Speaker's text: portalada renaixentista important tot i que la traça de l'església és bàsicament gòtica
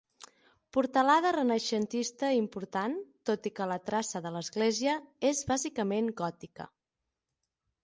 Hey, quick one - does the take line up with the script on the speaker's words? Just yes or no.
yes